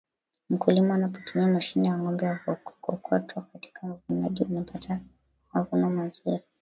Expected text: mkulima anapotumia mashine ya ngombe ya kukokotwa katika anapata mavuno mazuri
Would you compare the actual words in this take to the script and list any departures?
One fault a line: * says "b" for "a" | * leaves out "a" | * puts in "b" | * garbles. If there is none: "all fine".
* puts in "uvunaji"